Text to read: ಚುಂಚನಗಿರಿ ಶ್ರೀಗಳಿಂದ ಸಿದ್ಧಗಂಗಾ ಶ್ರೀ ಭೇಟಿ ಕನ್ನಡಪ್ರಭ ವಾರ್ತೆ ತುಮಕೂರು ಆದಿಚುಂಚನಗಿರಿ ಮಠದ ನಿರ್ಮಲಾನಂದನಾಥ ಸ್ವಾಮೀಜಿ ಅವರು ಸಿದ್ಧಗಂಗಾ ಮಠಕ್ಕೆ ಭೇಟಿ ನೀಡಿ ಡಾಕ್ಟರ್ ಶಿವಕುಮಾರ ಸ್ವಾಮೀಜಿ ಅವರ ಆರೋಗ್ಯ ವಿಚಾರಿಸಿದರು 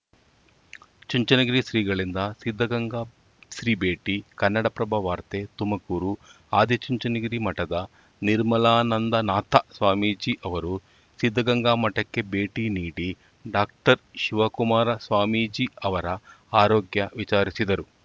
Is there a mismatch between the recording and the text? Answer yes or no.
no